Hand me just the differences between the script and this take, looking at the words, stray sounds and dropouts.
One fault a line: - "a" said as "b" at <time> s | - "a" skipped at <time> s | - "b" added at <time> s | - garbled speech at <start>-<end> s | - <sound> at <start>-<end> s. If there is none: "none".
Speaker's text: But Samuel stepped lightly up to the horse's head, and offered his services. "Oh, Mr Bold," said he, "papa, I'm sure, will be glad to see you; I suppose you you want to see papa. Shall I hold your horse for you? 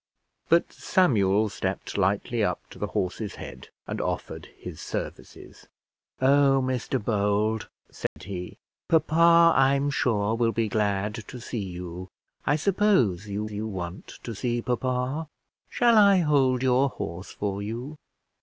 - dropout at 8.1-8.2 s